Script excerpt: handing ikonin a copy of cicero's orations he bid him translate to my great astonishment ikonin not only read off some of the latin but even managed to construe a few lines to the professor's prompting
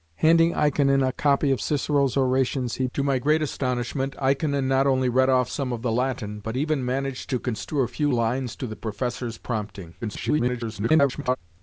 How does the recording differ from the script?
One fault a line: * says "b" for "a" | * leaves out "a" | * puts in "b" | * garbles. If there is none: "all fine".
* leaves out "bid him translate"
* garbles